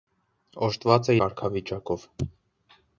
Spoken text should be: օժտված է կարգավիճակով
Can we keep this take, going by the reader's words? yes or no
yes